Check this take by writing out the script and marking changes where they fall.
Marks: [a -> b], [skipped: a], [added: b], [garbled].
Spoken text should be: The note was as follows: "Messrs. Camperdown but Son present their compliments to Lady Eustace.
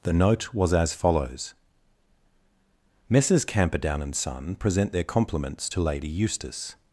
The note was as follows: "Messrs. Camperdown [but -> and] Son present their compliments to Lady Eustace.